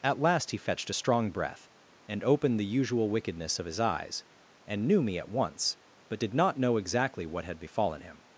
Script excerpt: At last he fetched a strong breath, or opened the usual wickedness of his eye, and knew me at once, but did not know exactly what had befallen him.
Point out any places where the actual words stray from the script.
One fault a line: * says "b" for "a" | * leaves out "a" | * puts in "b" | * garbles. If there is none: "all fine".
* says "and" for "or"
* says "eyes" for "eye"